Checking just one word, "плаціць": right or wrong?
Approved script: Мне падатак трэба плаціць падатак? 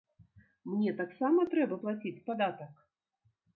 right